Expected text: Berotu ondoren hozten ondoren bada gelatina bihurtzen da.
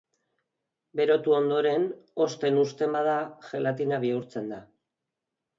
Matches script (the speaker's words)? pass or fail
fail